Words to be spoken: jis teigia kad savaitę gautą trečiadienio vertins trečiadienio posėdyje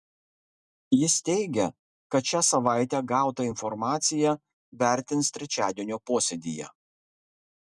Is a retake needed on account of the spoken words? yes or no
yes